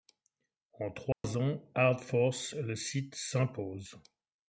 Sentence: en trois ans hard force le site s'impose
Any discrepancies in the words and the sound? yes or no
yes